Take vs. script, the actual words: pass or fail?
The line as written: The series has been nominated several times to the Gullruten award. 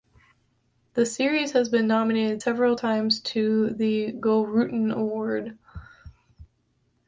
pass